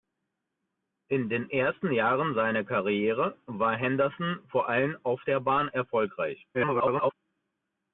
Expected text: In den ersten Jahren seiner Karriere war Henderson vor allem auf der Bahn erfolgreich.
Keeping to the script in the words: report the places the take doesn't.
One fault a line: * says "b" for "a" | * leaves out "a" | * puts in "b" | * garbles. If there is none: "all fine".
* garbles